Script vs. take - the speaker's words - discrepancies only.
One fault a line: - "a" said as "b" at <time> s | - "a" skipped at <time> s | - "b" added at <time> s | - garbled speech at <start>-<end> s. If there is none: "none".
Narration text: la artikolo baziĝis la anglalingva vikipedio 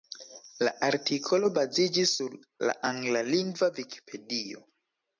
- "sur" added at 2.2 s